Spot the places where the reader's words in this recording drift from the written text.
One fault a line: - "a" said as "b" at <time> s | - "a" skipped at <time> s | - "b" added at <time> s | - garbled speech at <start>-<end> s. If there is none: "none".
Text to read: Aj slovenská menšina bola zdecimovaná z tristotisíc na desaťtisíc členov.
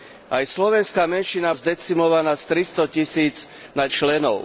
- "bola" skipped at 1.5 s
- "desaťtisíc" skipped at 3.9 s